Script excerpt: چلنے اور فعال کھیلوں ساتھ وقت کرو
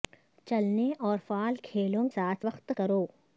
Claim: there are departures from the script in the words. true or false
false